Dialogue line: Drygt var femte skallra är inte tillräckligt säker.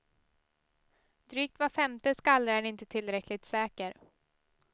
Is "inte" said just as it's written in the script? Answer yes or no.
yes